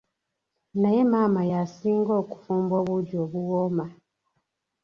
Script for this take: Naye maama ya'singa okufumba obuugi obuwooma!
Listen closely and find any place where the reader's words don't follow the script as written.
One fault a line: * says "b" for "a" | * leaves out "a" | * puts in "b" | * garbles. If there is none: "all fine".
all fine